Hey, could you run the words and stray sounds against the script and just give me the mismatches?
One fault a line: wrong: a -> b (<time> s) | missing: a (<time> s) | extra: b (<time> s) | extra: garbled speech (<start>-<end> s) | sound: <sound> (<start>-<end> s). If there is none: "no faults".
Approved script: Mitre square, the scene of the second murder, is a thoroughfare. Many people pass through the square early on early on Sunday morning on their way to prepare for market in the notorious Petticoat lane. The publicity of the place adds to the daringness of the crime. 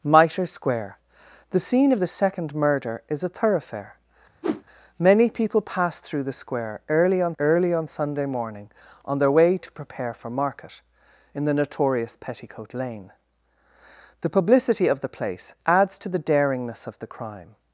sound: whoosh (4.4-4.6 s)